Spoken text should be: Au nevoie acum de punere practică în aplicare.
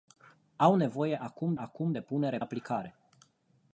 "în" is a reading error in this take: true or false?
true